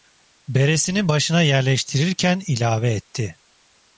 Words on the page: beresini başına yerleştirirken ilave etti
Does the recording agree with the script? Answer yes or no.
yes